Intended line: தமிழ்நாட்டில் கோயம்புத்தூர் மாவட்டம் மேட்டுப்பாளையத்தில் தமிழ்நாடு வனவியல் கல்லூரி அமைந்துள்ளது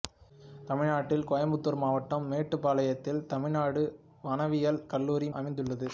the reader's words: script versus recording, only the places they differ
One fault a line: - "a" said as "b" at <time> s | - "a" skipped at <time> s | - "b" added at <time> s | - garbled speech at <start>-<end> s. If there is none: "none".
none